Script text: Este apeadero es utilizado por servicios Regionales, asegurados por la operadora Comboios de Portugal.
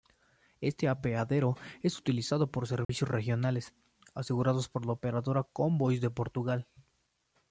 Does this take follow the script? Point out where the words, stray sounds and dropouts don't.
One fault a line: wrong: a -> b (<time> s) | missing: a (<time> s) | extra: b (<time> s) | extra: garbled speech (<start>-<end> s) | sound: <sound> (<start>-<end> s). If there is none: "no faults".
sound: dropout (2.8-2.9 s)